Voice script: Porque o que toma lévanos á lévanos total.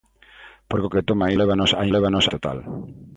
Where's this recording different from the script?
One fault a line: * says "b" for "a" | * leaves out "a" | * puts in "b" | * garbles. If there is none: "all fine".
all fine